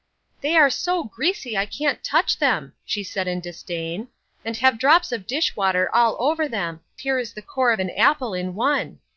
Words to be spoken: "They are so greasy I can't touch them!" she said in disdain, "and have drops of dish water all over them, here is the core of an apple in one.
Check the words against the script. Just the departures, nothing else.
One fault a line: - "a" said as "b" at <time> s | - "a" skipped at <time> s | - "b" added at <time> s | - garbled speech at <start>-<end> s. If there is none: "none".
none